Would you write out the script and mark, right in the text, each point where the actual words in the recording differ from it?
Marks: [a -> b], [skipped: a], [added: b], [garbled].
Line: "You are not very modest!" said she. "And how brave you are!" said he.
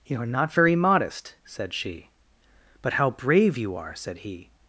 "You are not very modest!" said she. ["And -> But] how brave you are!" said he.